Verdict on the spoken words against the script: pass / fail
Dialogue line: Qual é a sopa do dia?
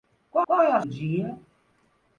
fail